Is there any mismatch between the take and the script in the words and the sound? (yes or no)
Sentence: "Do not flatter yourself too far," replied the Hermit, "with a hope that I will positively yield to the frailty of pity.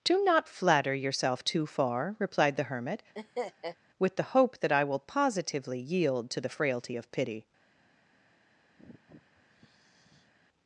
yes